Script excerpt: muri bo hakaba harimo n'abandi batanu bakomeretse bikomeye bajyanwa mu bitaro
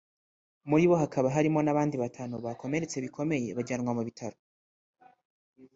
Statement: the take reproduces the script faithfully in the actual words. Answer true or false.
true